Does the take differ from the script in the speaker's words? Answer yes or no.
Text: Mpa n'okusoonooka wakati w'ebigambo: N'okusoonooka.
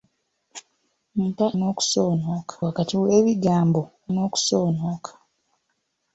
no